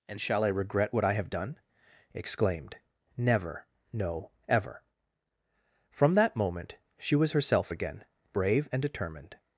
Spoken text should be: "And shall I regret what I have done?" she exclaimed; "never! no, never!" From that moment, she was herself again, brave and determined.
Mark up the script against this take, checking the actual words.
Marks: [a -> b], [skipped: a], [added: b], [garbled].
"And shall I regret what I have done?" [skipped: she] exclaimed; "never! no, [never!" -> ever] From that moment, she was herself again, brave and determined.